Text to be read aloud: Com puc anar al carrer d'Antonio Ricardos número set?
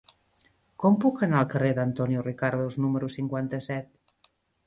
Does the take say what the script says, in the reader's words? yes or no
no